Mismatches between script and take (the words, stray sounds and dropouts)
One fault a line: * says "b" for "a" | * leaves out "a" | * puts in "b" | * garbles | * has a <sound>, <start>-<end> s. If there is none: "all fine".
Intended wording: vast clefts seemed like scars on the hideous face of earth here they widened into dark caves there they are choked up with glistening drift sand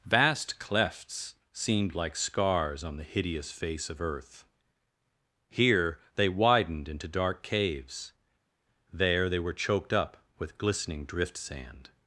* says "were" for "are"